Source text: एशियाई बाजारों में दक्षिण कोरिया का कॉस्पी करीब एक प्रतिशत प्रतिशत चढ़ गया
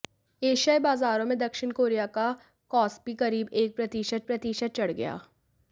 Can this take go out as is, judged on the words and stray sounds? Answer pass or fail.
pass